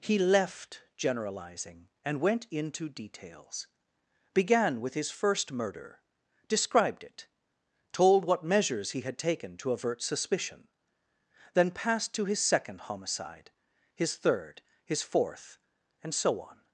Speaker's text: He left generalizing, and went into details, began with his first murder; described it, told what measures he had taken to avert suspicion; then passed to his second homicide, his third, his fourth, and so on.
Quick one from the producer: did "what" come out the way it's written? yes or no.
yes